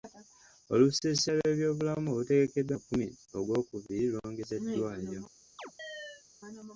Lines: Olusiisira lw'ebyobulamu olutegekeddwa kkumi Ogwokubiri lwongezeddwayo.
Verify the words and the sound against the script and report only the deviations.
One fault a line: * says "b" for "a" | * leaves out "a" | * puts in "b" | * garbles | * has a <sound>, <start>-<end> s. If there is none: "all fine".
* has a chirp, 5.6-6.2 s